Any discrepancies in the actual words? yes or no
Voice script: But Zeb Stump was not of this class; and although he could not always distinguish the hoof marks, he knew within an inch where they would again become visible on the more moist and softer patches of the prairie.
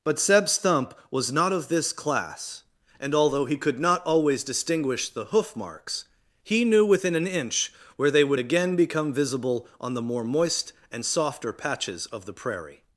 no